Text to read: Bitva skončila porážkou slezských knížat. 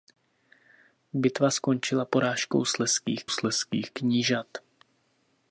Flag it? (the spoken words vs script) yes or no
yes